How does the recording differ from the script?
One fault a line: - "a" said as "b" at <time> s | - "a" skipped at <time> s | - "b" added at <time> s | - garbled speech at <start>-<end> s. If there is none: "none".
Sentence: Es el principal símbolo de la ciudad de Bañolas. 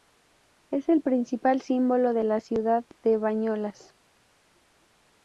none